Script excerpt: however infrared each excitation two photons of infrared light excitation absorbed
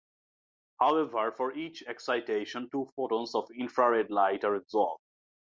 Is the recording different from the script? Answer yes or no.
yes